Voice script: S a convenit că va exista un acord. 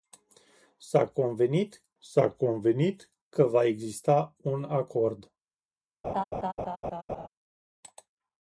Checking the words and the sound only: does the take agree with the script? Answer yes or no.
no